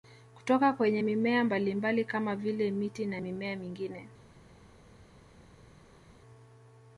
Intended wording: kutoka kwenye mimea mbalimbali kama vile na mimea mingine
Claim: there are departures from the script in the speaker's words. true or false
true